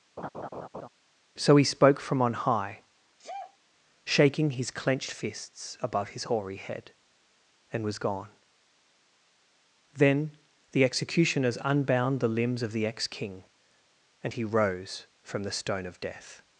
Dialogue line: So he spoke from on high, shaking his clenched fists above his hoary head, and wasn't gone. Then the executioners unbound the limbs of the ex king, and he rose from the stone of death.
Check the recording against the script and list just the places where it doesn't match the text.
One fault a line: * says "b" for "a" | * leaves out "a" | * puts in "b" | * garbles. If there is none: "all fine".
* says "was" for "wasn't"